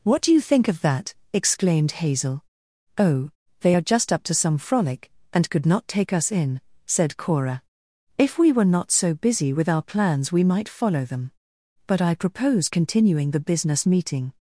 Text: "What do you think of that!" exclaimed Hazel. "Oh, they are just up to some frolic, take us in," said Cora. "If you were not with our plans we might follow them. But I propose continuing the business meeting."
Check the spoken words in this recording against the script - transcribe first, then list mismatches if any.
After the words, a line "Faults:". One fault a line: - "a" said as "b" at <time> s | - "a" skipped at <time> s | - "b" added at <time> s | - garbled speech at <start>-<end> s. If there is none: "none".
"What do you think of that!" exclaimed Hazel. "Oh, they are just up to some frolic, and could not take us in," said Cora. "If we were not so busy with our plans we might follow them. But I propose continuing the business meeting."
Faults:
- "and could not" added at 5.3 s
- "you" said as "we" at 8.4 s
- "so busy" added at 8.9 s